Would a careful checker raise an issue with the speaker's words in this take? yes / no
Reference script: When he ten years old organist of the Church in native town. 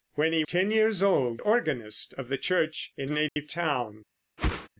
no